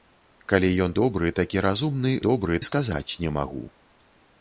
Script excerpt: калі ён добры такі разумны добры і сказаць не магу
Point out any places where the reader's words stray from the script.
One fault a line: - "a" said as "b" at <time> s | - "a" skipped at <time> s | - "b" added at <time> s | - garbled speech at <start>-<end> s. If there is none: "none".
none